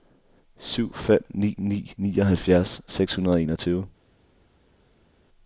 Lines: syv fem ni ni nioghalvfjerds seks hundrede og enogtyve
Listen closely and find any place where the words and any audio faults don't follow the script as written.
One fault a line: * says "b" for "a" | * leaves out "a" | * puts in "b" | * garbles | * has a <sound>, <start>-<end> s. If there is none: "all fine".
all fine